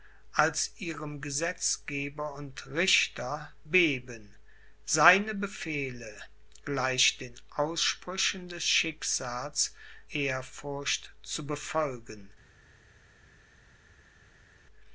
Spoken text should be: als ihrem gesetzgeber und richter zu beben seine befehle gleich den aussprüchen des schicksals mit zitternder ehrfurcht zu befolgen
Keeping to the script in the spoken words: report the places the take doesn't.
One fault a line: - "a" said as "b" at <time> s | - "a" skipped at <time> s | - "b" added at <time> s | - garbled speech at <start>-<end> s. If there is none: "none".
- "zu" skipped at 3.5 s
- "mit zitternder" skipped at 9.7 s